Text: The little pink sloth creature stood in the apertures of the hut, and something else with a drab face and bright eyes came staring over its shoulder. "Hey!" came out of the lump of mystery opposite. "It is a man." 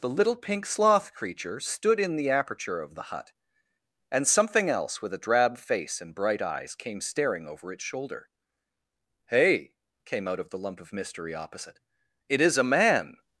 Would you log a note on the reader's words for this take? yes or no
yes